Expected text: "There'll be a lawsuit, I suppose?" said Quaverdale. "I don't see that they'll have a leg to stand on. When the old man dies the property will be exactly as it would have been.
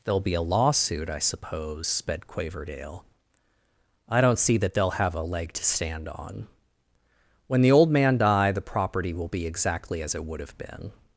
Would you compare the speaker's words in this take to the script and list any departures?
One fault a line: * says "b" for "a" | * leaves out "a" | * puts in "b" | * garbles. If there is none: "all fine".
* says "sped" for "said"
* says "die" for "dies"